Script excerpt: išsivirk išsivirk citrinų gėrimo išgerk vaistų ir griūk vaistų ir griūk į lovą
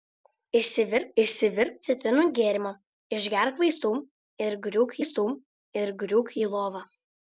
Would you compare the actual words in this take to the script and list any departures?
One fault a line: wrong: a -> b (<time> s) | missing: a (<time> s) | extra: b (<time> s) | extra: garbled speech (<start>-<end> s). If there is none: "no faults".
no faults